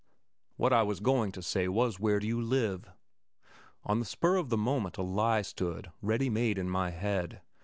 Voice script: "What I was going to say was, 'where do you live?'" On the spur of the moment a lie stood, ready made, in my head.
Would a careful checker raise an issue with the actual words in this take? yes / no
no